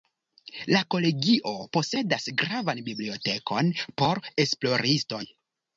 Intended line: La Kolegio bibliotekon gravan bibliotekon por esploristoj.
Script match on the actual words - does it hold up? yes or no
no